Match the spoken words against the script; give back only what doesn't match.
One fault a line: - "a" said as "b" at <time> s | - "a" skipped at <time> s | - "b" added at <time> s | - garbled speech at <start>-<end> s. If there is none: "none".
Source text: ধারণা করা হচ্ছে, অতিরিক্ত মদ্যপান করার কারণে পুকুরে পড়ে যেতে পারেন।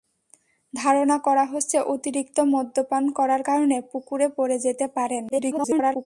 - garbled speech at 5.3-6.1 s